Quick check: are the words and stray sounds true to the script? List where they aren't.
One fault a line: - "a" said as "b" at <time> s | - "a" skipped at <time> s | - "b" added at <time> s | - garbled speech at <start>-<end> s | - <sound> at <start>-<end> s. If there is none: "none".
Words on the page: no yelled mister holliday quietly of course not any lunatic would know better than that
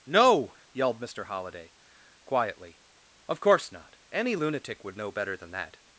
none